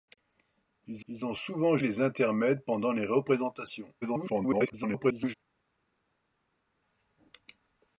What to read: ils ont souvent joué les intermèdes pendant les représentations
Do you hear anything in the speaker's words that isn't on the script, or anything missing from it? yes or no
yes